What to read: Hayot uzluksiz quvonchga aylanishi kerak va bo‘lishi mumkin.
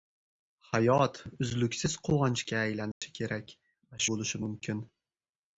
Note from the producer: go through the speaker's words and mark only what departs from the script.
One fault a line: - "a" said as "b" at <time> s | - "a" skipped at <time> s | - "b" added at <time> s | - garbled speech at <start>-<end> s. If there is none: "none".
none